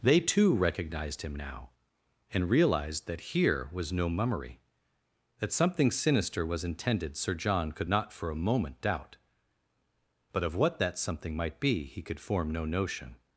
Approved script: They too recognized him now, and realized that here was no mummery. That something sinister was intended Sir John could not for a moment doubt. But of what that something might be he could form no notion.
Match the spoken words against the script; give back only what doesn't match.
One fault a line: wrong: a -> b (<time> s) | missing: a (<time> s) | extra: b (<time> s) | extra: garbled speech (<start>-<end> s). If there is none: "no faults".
no faults